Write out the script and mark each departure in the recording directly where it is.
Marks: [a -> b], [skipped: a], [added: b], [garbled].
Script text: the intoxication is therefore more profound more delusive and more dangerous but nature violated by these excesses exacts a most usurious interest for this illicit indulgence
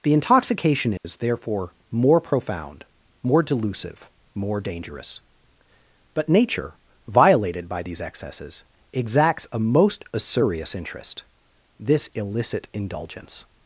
the intoxication is therefore more profound more delusive [skipped: and] more dangerous but nature violated by these excesses exacts a most usurious interest [skipped: for] this illicit indulgence